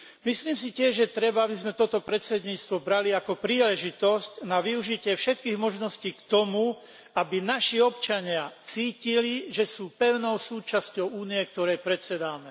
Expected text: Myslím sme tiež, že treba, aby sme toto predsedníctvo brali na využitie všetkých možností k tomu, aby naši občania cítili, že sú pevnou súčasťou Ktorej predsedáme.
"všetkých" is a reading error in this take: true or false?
false